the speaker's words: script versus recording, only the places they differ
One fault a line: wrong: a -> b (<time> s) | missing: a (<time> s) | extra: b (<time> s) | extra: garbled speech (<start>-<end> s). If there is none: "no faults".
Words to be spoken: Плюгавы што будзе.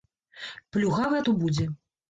no faults